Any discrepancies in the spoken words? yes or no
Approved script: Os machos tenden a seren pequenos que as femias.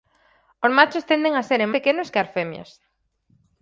no